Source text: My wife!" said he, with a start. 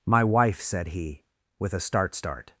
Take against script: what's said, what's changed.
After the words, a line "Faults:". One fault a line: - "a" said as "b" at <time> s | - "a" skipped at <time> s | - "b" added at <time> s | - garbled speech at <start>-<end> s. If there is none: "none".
My wife!" said he, with a start start.
Faults:
- "start" added at 2.1 s